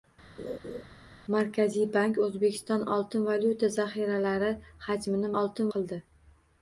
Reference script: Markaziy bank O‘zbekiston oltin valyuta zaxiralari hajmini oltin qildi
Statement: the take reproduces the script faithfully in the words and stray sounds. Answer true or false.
false